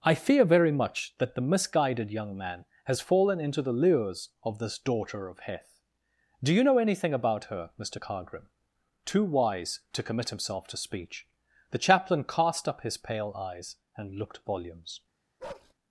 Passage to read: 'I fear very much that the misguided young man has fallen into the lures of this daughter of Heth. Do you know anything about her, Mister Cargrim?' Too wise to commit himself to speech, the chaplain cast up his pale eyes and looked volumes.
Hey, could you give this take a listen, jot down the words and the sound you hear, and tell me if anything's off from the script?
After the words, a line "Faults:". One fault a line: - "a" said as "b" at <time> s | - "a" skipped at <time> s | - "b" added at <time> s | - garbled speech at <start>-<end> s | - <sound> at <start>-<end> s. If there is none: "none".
'I fear very much that the misguided young man has fallen into the lures of this daughter of Heth. Do you know anything about her, Mister Cargrim?' Too wise to commit himself to speech, the chaplain cast up his pale eyes and looked volumes.
Faults:
- bark at 15.4-15.7 s